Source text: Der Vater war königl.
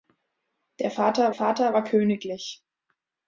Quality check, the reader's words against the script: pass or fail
fail